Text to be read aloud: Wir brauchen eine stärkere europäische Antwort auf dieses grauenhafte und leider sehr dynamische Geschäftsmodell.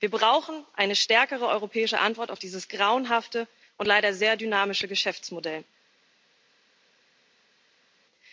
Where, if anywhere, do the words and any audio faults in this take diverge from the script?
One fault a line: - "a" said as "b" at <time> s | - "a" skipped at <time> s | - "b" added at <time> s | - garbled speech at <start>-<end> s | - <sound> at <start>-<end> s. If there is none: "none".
none